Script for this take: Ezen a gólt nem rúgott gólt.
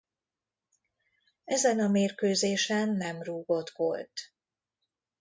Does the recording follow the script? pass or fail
fail